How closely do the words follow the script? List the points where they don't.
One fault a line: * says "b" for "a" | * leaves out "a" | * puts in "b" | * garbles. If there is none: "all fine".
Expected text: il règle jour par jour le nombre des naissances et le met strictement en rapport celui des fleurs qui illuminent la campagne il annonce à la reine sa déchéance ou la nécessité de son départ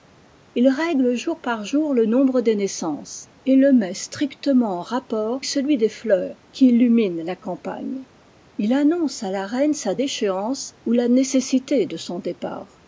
all fine